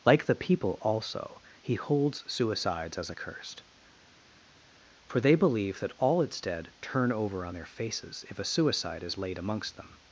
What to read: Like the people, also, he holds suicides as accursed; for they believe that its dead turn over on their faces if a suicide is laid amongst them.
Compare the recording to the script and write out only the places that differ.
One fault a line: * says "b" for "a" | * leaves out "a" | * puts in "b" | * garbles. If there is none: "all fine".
* puts in "all"